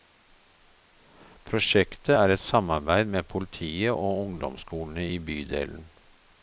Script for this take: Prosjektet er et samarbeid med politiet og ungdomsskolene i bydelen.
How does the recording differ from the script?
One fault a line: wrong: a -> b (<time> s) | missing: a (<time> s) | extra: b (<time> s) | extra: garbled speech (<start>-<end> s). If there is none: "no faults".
no faults